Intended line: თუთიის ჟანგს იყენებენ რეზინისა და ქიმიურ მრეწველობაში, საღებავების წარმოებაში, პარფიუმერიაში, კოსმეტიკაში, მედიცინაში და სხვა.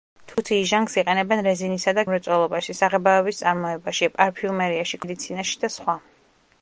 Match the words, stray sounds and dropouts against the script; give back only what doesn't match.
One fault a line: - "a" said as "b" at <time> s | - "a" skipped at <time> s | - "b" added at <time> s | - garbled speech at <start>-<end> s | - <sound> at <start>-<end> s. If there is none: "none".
- dropout at 0.3-0.4 s
- "ქიმიურ" skipped at 2.0 s
- "კოსმეტიკაში" skipped at 5.0 s